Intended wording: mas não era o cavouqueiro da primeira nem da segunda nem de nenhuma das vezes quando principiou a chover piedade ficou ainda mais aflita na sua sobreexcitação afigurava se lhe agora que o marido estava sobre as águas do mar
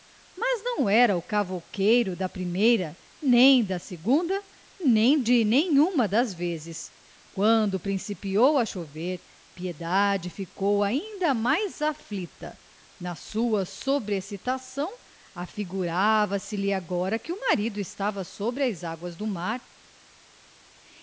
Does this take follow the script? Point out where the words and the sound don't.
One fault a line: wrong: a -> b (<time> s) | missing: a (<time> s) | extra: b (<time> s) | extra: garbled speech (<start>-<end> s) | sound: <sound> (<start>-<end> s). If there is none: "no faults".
no faults